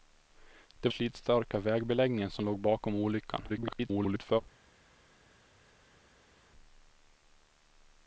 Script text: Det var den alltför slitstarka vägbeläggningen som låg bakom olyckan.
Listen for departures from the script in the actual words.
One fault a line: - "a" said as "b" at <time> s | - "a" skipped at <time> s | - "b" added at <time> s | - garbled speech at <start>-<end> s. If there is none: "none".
- "var den alltför" skipped at 0.9 s
- garbled speech at 3.5-4.4 s